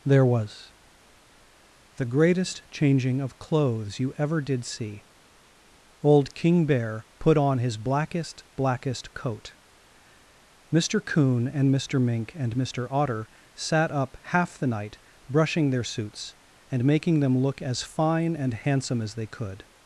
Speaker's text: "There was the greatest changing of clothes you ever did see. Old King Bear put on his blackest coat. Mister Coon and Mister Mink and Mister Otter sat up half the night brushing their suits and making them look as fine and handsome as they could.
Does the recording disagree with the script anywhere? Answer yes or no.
yes